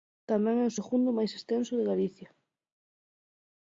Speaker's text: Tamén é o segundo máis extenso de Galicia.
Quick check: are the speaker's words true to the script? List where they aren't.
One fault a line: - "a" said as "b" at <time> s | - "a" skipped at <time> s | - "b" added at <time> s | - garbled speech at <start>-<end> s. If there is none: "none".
none